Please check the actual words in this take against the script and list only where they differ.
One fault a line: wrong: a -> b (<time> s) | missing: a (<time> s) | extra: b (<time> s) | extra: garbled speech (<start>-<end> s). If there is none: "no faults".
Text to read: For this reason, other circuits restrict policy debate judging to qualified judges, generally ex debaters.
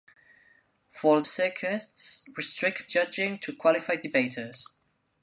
missing: this reason other (1.2 s)
missing: policy debate (2.9 s)
missing: judges generally ex (4.1 s)